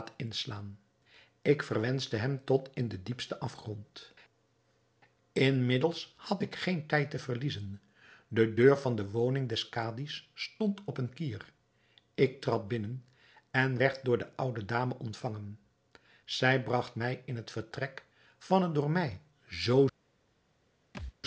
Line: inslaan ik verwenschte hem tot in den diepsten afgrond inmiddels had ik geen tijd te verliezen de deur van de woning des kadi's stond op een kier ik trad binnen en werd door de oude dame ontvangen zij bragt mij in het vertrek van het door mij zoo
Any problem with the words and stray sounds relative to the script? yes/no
yes